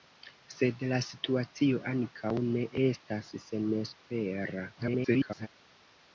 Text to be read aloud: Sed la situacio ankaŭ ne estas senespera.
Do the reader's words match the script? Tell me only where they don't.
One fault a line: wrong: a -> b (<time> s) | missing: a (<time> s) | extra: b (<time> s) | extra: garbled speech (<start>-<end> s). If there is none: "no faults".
extra: garbled speech (4.7-5.5 s)